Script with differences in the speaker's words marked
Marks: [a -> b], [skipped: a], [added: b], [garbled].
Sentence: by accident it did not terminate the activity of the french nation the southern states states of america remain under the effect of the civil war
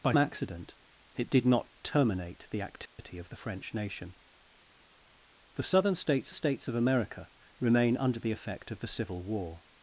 by accident it did not terminate the activity of the french nation the southern states states of america remain under the effect of the civil war